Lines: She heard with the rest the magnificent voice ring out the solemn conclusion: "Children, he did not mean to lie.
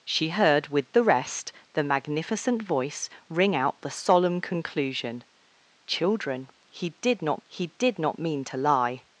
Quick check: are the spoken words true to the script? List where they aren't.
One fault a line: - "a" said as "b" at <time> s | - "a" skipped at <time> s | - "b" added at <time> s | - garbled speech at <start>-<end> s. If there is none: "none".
- "he did not" added at 7.4 s